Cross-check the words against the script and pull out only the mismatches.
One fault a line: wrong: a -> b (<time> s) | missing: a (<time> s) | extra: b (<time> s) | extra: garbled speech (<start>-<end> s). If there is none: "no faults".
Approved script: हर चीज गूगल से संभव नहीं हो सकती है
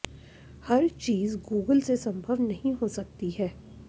no faults